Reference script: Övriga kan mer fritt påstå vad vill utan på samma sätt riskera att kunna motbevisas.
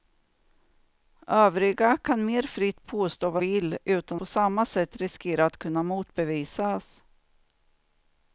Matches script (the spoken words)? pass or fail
pass